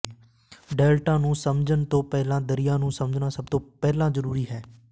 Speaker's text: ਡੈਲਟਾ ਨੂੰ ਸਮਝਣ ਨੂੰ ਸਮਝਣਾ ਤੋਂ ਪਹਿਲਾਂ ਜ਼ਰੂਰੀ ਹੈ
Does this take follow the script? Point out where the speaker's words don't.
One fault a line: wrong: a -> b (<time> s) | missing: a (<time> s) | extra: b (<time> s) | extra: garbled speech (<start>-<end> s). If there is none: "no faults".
extra: ਤੋਂ ਪਹਿਲਾਂ ਦਰਿਆ (1.9 s)
extra: ਸਭ (3.3 s)